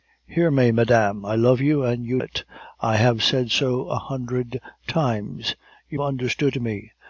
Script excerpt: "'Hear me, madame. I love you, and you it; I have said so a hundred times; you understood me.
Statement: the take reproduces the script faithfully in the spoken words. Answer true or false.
true